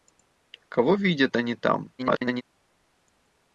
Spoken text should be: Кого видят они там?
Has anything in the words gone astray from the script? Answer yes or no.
yes